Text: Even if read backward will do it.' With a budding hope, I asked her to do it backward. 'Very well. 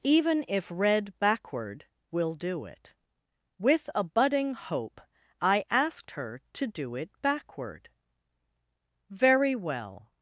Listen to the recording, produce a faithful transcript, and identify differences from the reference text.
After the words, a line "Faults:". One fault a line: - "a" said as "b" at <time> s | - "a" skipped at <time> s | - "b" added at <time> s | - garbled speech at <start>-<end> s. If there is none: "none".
Even if read backward will do it.' With a budding hope, I asked her to do it backward. 'Very well.
Faults:
none